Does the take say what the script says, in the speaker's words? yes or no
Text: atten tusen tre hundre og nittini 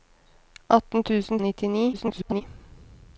no